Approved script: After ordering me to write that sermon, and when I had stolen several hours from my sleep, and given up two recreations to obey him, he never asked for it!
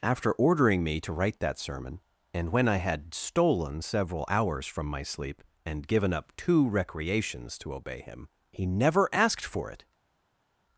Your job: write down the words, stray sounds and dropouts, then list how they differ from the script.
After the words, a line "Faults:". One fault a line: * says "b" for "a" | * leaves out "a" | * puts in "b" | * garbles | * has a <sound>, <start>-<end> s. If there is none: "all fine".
After ordering me to write that sermon, and when I had stolen several hours from my sleep, and given up two recreations to obey him, he never asked for it!
Faults:
all fine